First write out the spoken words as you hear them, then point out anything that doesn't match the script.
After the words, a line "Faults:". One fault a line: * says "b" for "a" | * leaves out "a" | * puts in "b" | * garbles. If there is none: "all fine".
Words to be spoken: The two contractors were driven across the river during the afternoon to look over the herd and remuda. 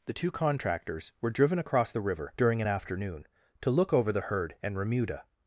The two contractors were driven across the river during an afternoon to look over the herd and remuda.
Faults:
* says "an" for "the"